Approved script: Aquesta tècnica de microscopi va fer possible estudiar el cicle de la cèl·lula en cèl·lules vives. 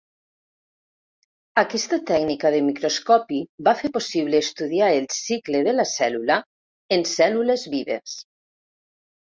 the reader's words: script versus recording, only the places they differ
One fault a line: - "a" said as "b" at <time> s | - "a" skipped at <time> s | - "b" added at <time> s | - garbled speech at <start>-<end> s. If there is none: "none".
none